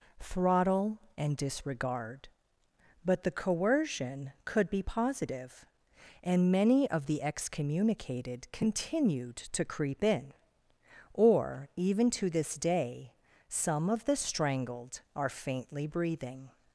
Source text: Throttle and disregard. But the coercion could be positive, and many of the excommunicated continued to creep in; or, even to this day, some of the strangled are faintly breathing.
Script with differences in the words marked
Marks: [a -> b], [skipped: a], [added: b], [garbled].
Throttle and disregard. But the coercion could be positive, and many of the excommunicated continued to creep in; or, even to this day, some of the strangled are faintly breathing.